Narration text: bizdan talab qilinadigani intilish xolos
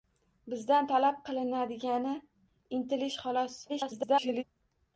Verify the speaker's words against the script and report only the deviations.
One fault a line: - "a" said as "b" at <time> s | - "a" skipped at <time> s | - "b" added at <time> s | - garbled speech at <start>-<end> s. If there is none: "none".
- garbled speech at 3.7-4.4 s